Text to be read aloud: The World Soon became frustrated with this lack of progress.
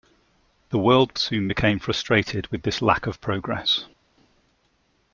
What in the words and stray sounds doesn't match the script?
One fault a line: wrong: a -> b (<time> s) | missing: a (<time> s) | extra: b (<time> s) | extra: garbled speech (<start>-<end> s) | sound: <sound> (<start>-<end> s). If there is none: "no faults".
no faults